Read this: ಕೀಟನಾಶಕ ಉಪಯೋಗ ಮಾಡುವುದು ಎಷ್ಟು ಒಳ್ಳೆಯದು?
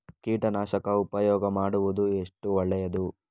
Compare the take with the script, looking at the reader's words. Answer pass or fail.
pass